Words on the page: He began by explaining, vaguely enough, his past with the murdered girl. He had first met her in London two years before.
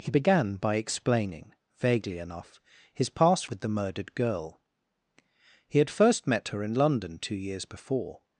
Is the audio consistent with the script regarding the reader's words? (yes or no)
yes